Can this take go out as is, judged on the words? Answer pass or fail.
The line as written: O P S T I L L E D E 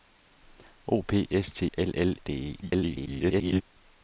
fail